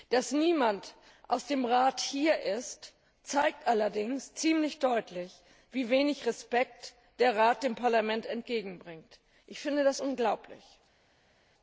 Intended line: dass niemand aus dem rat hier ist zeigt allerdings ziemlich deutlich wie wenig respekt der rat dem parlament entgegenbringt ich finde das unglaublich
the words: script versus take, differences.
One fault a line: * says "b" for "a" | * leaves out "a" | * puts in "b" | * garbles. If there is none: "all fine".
all fine